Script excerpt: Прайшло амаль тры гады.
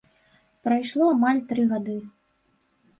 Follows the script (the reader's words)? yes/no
yes